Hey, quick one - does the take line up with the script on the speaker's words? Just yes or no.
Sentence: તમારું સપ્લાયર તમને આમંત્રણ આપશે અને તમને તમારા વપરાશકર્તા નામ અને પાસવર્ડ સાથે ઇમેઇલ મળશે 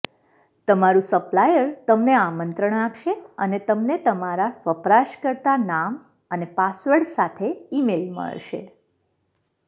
yes